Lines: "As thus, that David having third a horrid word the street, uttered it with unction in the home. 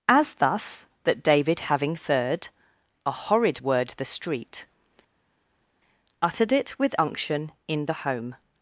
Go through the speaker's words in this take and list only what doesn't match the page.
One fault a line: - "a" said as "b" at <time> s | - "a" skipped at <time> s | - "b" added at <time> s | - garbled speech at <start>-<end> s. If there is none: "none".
none